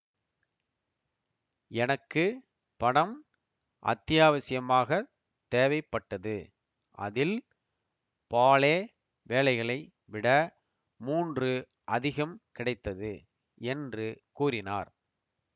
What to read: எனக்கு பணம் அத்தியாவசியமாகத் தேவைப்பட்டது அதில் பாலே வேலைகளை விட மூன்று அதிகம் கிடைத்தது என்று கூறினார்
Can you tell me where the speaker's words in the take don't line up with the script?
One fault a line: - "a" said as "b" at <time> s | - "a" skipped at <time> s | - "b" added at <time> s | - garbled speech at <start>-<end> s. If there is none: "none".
none